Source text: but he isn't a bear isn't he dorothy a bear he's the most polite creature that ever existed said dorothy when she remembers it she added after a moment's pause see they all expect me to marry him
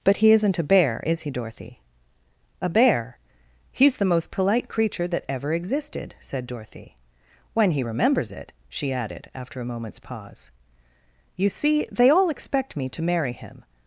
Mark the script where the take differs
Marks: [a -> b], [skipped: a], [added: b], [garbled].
but he isn't a bear [isn't -> is] he dorothy a bear he's the most polite creature that ever existed said dorothy when [she -> he] remembers it she added after a moment's pause [added: you] see they all expect me to marry him